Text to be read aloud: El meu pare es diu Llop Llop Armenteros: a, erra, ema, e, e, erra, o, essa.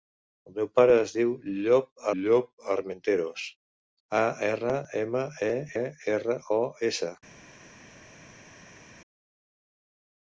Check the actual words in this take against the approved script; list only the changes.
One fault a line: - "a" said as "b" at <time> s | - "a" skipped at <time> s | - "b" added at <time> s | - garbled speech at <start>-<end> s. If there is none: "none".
none